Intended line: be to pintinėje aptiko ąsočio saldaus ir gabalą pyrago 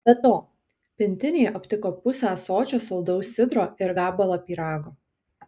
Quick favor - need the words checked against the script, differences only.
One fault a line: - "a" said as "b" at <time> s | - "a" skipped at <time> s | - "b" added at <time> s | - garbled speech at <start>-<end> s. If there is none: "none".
- "pusę" added at 2.0 s
- "sidro" added at 3.4 s